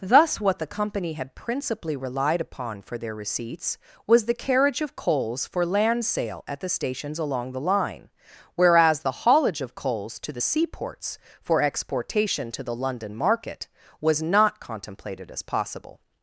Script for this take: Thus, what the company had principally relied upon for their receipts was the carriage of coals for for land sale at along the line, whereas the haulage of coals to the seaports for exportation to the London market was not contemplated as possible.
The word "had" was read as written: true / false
true